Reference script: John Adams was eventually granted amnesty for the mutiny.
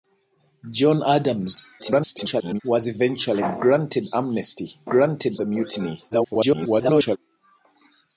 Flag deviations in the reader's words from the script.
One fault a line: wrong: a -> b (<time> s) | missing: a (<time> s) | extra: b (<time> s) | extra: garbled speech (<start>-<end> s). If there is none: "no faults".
extra: garbled speech (1.8-2.6 s)
wrong: for -> granted (4.9 s)
extra: garbled speech (6.1-7.2 s)